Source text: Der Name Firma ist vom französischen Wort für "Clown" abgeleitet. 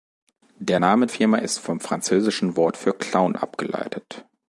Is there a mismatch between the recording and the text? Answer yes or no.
no